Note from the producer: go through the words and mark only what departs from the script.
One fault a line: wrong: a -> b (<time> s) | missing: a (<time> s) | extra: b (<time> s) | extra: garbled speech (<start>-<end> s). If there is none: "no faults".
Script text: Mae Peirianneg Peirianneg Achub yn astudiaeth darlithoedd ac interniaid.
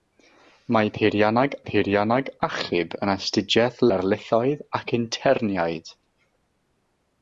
no faults